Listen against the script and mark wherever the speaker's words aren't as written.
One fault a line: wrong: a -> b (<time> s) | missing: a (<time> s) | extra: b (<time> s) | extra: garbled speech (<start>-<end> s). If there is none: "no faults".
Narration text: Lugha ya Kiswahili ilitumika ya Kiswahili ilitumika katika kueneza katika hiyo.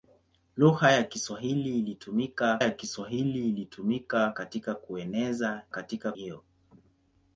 no faults